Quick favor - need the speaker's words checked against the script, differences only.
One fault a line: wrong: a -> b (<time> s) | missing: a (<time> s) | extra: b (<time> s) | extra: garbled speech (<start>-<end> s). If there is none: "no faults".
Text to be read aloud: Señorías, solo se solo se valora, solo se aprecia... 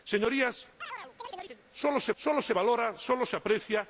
no faults